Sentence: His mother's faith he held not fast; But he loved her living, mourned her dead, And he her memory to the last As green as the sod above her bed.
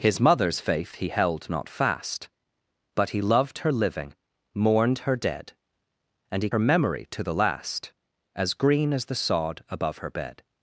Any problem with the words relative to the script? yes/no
no